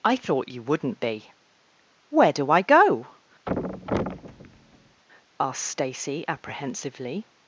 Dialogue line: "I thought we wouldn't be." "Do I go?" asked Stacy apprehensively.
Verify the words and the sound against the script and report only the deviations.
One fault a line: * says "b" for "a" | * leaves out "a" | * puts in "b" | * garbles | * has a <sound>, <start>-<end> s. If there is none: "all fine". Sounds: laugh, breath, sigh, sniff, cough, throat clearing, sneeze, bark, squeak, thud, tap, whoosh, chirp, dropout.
* says "you" for "we"
* puts in "Where"
* has a thud, 3.5-5.0 s